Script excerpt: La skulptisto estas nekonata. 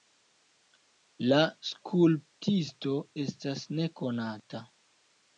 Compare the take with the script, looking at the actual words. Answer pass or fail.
pass